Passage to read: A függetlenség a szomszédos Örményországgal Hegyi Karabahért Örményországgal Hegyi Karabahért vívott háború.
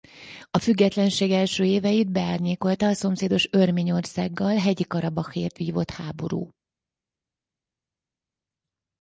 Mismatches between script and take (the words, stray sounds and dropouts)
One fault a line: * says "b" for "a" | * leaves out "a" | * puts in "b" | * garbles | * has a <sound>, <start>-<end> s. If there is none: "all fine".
* says "első éveit beárnyékolta a szomszédos" for "a szomszédos Örményországgal Hegyi Karabahért"